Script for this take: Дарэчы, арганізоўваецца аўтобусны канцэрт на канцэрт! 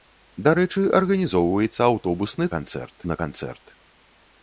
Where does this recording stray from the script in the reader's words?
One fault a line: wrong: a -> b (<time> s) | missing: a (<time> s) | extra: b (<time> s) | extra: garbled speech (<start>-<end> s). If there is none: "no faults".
no faults